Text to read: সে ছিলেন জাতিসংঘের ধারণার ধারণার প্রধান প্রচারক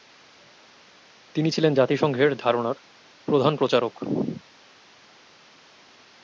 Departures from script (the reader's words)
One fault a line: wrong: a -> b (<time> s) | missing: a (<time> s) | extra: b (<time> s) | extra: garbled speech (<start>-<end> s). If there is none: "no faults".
wrong: সে -> তিনি (1.4 s)
missing: ধারণার (2.8 s)